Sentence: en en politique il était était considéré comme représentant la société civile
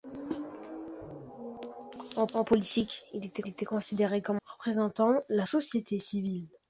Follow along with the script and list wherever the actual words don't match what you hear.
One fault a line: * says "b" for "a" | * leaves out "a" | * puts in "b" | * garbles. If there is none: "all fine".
all fine